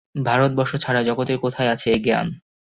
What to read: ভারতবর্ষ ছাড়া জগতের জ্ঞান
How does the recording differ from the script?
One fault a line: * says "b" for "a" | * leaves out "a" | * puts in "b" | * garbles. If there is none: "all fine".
* puts in "কোথায় আছে এ"